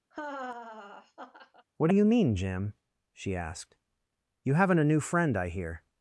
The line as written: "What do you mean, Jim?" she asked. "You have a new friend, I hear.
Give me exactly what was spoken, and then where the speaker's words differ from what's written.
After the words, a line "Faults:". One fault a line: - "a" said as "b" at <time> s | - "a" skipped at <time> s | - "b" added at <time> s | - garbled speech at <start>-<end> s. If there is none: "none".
"What do you mean, Jim?" she asked. "You haven't a new friend, I hear.
Faults:
- "have" said as "haven't" at 4.5 s